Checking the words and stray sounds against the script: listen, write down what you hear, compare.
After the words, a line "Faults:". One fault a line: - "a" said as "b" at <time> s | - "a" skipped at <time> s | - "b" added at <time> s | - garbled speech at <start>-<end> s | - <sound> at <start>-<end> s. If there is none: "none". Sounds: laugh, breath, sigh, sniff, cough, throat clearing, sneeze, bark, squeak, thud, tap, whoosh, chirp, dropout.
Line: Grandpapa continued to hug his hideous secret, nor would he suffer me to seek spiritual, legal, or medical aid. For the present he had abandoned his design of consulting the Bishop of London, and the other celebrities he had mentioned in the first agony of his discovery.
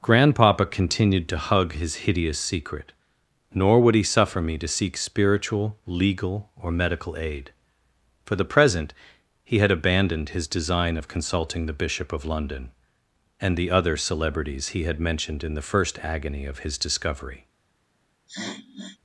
Grandpapa continued to hug his hideous secret, nor would he suffer me to seek spiritual, legal, or medical aid. For the present he had abandoned his design of consulting the Bishop of London, and the other celebrities he had mentioned in the first agony of his discovery.
Faults:
- sniff at 18.3-19.0 s